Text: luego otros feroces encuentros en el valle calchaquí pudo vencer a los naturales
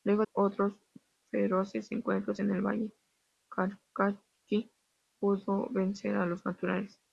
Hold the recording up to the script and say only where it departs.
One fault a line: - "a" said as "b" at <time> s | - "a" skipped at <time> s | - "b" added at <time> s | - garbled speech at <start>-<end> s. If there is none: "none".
none